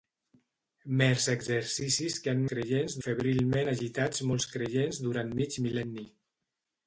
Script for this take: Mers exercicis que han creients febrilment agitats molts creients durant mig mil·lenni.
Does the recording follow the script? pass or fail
pass